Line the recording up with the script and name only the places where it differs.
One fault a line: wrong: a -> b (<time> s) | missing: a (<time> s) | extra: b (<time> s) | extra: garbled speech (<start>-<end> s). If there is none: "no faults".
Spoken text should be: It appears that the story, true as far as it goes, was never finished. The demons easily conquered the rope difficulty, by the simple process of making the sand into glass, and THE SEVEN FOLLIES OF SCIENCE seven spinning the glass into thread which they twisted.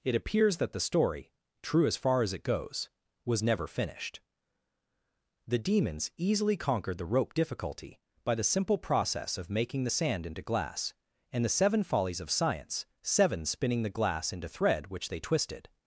no faults